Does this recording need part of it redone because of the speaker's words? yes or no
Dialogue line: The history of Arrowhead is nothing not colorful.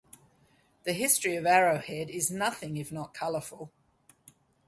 yes